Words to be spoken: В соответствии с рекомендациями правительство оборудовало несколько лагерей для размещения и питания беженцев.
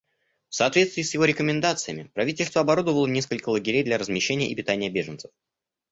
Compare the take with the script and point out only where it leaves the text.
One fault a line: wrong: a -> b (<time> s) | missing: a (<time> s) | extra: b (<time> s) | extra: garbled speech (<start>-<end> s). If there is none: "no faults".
extra: его (1.1 s)